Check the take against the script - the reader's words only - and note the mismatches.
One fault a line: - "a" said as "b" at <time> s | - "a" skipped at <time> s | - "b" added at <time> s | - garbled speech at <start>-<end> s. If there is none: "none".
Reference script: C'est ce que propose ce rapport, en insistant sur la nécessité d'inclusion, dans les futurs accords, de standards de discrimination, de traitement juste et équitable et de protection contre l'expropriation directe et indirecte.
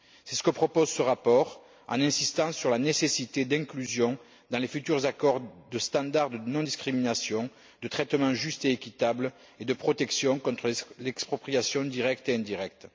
- "non" added at 6.4 s